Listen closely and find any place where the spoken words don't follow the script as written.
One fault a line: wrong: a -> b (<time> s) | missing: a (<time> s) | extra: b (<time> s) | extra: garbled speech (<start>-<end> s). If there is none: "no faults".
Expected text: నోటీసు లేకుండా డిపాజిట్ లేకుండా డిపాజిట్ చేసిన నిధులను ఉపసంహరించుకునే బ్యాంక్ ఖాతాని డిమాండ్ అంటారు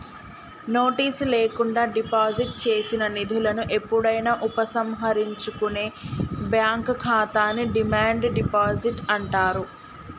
missing: లేకుండా డిపాజిట్ (2.5 s)
extra: ఎప్పుడైనా (3.8 s)
extra: డిపాజిట్ (8.4 s)